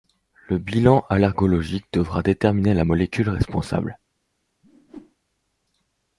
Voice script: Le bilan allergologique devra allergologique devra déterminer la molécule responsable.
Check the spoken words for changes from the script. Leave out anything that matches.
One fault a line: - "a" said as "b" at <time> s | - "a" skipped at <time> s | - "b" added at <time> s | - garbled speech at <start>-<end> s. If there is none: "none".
- "allergologique devra" skipped at 2.2 s